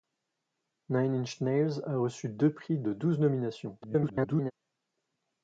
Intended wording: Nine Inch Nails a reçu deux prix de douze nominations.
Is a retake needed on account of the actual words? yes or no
yes